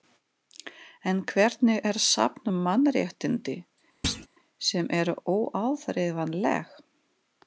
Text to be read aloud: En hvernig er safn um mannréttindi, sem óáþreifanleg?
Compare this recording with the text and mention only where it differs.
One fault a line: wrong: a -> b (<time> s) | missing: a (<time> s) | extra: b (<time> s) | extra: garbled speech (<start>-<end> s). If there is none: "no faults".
extra: eru (5.0 s)